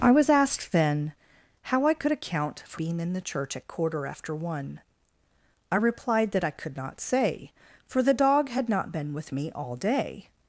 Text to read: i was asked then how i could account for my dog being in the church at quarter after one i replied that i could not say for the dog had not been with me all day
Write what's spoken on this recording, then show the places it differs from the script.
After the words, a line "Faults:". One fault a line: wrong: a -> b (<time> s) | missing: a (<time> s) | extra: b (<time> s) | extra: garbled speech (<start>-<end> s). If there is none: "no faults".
i was asked then how i could account for being in the church at quarter after one i replied that i could not say for the dog had not been with me all day
Faults:
missing: my dog (2.8 s)